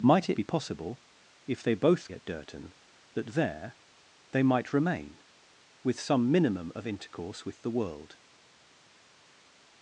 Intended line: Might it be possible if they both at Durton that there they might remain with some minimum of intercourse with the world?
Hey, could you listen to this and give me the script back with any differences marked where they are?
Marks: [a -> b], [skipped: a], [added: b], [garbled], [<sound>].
Might it be possible if they both at Durton that there they might remain with some minimum of intercourse with the world?